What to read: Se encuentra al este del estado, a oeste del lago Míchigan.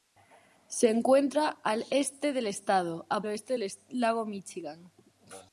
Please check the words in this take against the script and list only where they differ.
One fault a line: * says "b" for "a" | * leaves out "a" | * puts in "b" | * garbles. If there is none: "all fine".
all fine